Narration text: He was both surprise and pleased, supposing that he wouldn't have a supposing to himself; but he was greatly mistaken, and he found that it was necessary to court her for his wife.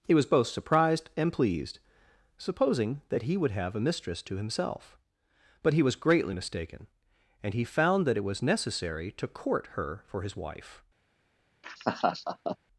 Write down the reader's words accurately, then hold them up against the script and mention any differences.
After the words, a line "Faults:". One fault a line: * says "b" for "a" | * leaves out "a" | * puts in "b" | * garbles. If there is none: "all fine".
He was both surprised and pleased, supposing that he would have a mistress to himself; but he was greatly mistaken, and he found that it was necessary to court her for his wife.
Faults:
* says "surprised" for "surprise"
* says "would" for "wouldn't"
* says "mistress" for "supposing"